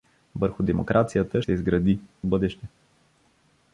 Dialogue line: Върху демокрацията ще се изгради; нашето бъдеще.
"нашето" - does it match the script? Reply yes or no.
no